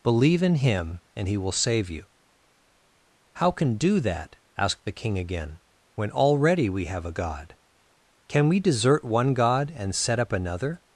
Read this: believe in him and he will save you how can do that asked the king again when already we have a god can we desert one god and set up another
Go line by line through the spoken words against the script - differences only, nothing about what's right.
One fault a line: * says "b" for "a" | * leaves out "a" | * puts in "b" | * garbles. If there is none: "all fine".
all fine